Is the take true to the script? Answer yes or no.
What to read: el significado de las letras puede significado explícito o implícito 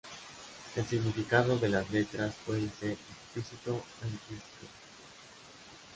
no